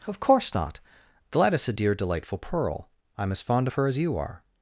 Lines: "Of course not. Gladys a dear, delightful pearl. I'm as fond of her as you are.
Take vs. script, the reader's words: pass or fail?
pass